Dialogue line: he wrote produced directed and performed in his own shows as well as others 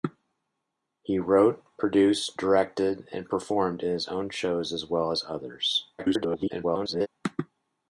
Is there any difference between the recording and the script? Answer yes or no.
yes